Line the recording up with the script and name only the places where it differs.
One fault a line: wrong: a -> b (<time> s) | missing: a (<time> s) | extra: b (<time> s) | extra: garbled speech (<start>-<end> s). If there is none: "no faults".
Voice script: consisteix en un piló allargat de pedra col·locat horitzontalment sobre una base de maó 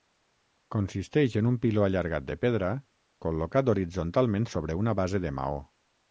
no faults